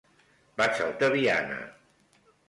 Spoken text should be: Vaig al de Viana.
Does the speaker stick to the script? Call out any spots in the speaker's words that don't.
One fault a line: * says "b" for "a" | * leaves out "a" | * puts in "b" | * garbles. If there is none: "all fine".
all fine